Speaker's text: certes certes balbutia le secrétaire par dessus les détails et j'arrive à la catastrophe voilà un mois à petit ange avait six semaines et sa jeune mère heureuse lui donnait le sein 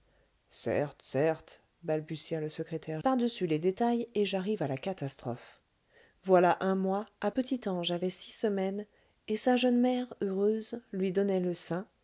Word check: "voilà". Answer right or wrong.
right